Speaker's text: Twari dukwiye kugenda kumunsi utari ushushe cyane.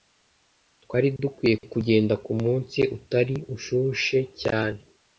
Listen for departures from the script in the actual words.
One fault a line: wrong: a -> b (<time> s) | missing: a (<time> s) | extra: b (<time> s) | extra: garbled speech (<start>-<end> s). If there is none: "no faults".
no faults